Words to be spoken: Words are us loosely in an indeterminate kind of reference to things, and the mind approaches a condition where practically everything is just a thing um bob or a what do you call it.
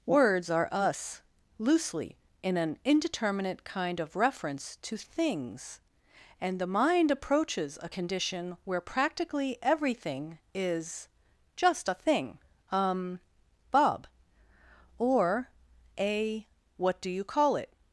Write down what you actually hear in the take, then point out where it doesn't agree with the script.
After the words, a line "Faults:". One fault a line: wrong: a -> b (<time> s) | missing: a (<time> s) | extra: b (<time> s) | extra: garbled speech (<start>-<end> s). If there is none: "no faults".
Words are us loosely in an indeterminate kind of reference to things, and the mind approaches a condition where practically everything is just a thing um bob or a what do you call it.
Faults:
no faults